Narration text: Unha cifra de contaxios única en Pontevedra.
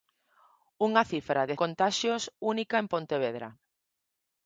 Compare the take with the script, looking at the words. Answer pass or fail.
pass